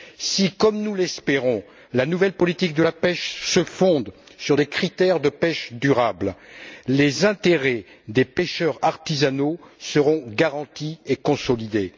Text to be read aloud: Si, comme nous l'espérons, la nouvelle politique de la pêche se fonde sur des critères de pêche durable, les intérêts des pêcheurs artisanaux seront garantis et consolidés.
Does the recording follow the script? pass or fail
pass